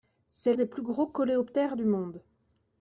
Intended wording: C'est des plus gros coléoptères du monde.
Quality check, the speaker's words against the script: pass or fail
pass